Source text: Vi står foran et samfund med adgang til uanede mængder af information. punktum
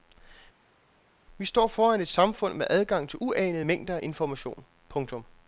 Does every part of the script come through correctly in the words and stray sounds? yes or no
yes